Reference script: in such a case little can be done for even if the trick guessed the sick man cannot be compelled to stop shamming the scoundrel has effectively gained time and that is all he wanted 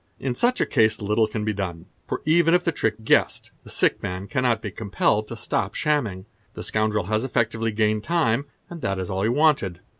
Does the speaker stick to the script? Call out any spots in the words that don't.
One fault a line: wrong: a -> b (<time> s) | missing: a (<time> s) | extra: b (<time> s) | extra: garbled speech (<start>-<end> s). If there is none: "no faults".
no faults